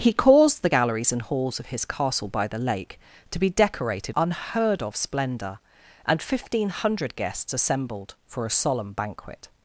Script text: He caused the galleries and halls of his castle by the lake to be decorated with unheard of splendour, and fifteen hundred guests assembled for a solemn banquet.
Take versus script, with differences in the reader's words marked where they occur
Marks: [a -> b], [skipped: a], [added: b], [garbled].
He caused the galleries and halls of his castle by the lake to be decorated [skipped: with] unheard of splendour, and fifteen hundred guests assembled for a solemn banquet.